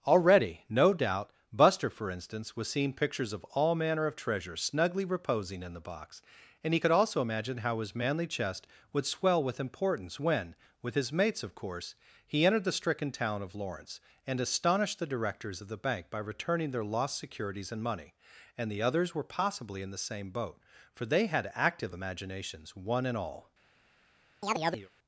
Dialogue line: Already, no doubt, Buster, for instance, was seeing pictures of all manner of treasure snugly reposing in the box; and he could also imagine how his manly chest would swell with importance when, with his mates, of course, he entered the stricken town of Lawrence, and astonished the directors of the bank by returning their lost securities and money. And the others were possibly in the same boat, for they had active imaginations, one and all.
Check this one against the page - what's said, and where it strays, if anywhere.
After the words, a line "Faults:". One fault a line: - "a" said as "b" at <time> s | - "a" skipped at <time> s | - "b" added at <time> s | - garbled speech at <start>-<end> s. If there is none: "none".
Already, no doubt, Buster, for instance, was seeing pictures of all manner of treasure snugly reposing in the box; and he could also imagine how his manly chest would swell with importance when, with his mates, of course, he entered the stricken town of Lawrence, and astonished the directors of the bank by returning their lost securities and money. And the others were possibly in the same boat, for they had active imaginations, one and all.
Faults:
none